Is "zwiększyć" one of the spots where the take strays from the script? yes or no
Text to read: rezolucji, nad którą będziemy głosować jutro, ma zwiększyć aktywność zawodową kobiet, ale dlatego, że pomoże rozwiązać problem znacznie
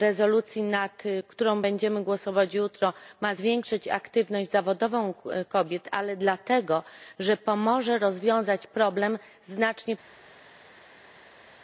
no